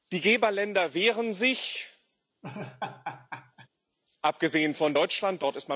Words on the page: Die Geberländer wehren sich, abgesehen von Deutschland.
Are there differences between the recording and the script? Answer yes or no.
no